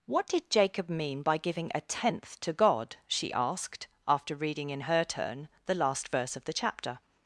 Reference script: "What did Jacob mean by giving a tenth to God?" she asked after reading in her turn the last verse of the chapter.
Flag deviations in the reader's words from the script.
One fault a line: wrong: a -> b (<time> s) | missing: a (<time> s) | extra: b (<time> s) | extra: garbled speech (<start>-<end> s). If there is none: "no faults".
no faults